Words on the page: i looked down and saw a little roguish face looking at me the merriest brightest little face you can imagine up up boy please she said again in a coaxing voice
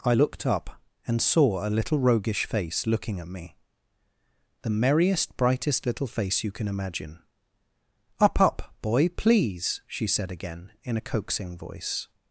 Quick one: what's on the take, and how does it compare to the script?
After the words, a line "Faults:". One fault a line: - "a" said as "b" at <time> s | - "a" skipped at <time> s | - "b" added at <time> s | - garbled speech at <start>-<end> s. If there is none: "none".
i looked up and saw a little roguish face looking at me the merriest brightest little face you can imagine up up boy please she said again in a coaxing voice
Faults:
- "down" said as "up" at 0.5 s